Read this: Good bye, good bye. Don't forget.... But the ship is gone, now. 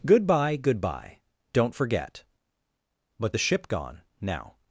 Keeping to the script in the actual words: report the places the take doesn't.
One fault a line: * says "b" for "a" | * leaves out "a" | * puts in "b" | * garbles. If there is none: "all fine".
* leaves out "is"